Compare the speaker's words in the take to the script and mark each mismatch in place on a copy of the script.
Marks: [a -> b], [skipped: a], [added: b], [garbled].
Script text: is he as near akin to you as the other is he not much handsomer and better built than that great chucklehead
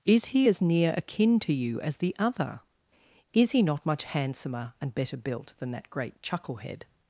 is he as near akin to you as the other is he not much handsomer and better built than that great chucklehead